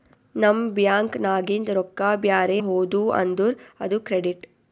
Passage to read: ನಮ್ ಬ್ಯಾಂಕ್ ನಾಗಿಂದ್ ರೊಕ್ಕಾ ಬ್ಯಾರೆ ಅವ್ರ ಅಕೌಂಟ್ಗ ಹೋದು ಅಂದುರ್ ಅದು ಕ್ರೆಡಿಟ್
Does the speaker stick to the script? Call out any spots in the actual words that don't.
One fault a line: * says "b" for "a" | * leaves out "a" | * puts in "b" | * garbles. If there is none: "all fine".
* leaves out "ಅವ್ರ ಅಕೌಂಟ್ಗ"